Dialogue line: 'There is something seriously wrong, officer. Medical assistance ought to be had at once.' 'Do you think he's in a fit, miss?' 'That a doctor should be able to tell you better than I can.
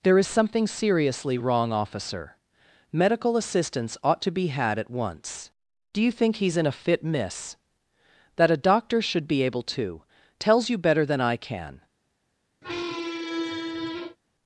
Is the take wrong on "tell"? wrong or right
wrong